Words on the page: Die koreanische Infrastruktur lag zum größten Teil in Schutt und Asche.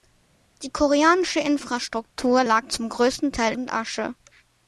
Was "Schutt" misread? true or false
true